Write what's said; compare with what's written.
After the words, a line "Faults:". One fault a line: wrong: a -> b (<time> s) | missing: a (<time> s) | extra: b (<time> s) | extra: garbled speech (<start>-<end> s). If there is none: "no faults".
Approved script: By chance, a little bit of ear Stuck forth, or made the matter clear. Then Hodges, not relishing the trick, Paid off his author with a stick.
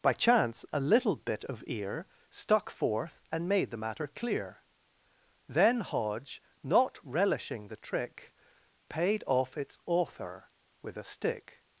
By chance, a little bit of ear Stuck forth, and made the matter clear. Then Hodge, not relishing the trick, Paid off its author with a stick.
Faults:
wrong: or -> and (3.3 s)
wrong: Hodges -> Hodge (5.8 s)
wrong: his -> its (9.6 s)